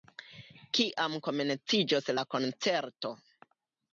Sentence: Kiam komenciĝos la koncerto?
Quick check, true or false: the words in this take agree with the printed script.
true